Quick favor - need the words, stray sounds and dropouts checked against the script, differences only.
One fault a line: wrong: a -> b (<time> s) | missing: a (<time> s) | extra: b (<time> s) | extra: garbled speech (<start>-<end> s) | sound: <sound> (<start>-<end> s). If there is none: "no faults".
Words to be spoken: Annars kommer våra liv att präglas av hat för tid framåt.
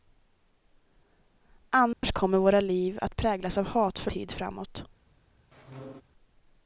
sound: dropout (1.9-2.0 s)
sound: squeak (5.5-6.0 s)